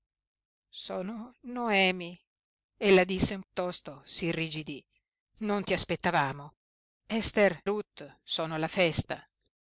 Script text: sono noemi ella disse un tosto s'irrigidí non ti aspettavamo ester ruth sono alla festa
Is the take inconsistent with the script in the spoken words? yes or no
no